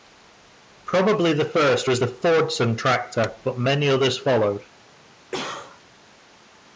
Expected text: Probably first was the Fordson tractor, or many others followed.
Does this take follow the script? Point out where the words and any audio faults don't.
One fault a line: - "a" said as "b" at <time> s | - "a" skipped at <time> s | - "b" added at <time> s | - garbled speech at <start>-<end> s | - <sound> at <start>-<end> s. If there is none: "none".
- "the" added at 1.3 s
- "or" said as "but" at 3.4 s
- cough at 5.3-5.8 s